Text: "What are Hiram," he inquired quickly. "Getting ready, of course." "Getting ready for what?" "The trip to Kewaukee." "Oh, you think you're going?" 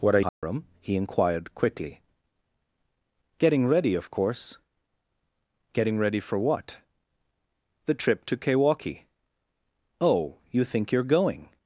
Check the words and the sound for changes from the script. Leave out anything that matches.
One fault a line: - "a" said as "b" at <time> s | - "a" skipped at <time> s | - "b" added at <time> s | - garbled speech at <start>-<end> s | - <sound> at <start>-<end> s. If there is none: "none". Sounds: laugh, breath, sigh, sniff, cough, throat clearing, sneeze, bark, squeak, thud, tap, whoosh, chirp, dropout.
- dropout at 0.3-0.4 s